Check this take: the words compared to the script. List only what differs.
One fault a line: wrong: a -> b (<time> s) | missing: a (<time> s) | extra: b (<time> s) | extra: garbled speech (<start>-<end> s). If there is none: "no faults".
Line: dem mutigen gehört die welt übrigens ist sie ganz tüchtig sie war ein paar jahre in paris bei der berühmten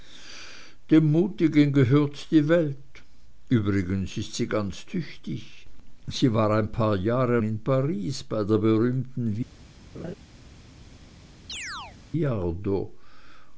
no faults